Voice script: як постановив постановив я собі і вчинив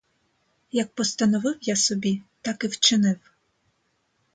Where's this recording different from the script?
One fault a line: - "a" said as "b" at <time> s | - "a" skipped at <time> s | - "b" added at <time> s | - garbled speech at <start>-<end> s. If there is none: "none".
- "постановив" skipped at 1.6 s
- "так" added at 2.4 s